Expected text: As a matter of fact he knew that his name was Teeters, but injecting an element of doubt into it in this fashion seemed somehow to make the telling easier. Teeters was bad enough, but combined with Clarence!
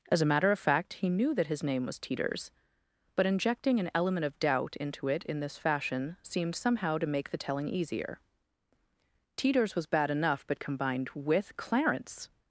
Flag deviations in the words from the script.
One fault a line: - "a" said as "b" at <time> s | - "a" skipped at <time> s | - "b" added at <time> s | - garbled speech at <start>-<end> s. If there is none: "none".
none